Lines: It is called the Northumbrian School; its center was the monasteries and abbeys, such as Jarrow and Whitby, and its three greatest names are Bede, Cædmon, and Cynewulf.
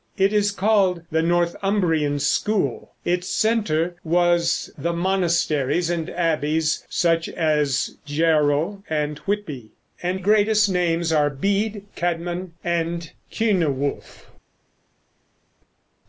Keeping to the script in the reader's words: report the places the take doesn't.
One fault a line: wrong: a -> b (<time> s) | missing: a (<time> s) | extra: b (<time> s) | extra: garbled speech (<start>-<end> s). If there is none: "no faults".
missing: its three (10.2 s)